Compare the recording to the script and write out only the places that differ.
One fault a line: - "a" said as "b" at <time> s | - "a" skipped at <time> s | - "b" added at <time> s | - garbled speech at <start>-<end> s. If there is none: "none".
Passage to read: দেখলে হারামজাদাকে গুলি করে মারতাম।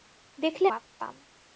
- "হারামজাদাকে গুলি করে" skipped at 0.7 s